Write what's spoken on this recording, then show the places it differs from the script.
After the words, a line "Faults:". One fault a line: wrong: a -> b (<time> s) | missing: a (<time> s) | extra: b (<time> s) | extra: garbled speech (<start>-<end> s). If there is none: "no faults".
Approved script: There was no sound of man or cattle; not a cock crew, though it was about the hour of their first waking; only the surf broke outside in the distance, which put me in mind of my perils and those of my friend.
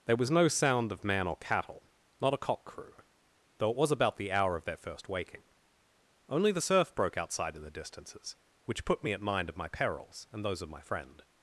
There was no sound of man or cattle; not a cock crew, though it was about the hour of their first waking; only the surf broke outside in the distances, which put me at mind of my perils and those of my friend.
Faults:
wrong: distance -> distances (7.7 s)
wrong: in -> at (9.1 s)